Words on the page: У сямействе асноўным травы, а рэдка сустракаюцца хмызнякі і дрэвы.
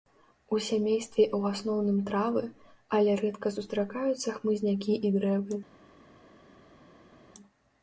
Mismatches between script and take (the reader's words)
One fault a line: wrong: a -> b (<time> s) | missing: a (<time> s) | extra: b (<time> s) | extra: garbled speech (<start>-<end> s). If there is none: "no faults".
extra: ў (1.4 s)
wrong: а -> але (3.0 s)